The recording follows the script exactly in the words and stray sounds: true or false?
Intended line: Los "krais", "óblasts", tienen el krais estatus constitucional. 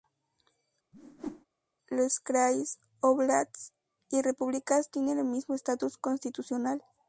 false